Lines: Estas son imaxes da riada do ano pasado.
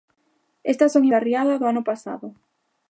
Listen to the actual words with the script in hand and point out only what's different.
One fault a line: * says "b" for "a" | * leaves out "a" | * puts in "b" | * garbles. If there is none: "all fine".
* leaves out "imaxes"